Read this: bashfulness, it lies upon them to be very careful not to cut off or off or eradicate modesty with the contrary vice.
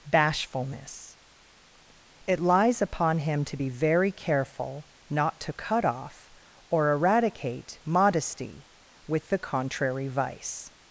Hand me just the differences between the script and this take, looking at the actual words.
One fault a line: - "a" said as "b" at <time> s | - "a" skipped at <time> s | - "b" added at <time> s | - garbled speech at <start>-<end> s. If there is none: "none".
- "them" said as "him" at 3.2 s
- "off or" skipped at 6.9 s